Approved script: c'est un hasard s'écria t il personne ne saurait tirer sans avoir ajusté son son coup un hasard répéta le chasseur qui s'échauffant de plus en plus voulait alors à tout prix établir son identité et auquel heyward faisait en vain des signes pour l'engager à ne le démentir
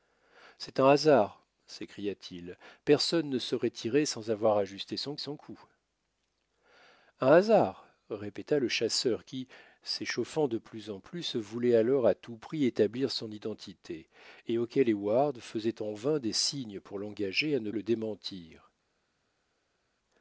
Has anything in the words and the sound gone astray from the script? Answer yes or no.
no